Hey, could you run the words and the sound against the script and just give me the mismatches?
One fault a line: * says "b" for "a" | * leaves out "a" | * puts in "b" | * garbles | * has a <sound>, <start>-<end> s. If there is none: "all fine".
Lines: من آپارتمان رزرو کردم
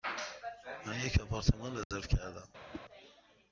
* puts in "یک"
* has a dropout, 1.8-1.9 s
* has a whoosh, 2.7-2.8 s